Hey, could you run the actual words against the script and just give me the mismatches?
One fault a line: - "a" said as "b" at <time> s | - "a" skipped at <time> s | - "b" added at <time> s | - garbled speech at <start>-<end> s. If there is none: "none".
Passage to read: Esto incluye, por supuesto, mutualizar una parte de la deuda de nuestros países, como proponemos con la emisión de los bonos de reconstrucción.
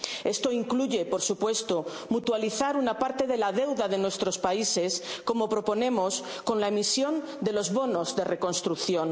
none